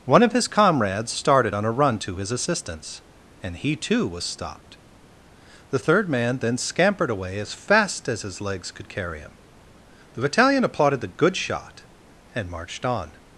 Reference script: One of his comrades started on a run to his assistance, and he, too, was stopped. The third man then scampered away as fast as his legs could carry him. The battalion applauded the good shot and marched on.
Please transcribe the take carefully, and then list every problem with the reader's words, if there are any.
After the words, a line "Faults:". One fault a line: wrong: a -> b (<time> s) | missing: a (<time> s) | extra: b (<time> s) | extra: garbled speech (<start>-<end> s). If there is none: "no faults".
One of his comrades started on a run to his assistance, and he, too, was stopped. The third man then scampered away as fast as his legs could carry him. The battalion applauded the good shot and marched on.
Faults:
no faults